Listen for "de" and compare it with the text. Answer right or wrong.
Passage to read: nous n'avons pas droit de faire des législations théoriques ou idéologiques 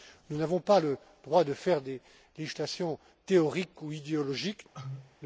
right